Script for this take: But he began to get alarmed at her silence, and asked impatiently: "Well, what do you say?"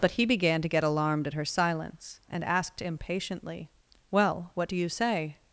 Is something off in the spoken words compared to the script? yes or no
no